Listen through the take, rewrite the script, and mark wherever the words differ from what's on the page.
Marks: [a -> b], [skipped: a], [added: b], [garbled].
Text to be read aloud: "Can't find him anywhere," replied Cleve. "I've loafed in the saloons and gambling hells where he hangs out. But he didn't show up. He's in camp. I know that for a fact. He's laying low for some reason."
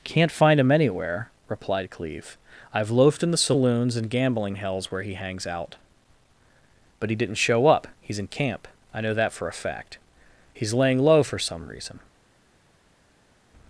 "Can't find him anywhere," replied Cleve. "I've loafed in the saloons and gambling hells where he hangs out. But he didn't show up. He's in camp. I know that for a fact. He's laying low for some reason."